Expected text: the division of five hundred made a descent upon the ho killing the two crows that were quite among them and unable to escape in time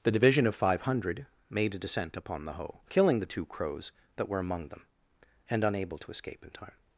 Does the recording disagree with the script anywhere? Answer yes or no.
yes